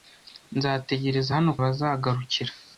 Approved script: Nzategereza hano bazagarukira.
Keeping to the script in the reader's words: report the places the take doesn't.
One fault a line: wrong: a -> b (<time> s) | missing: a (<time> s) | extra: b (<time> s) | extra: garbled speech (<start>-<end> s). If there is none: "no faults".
no faults